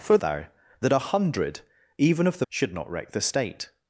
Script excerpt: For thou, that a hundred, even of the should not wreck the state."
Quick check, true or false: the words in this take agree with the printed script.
true